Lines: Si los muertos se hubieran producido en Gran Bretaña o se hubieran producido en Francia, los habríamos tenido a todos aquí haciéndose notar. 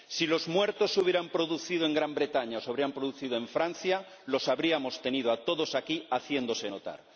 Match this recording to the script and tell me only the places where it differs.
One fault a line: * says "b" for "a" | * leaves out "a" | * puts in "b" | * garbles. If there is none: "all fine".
all fine